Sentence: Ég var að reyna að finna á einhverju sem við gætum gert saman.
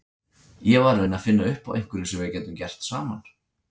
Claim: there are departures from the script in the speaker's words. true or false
true